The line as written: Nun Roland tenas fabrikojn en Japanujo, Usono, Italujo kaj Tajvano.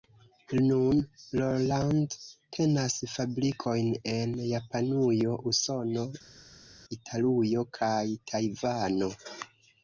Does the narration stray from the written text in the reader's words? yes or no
no